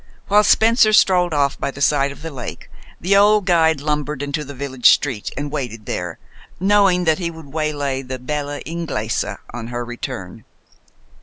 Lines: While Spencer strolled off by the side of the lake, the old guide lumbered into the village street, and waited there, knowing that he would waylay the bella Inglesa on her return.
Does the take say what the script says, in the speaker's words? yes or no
yes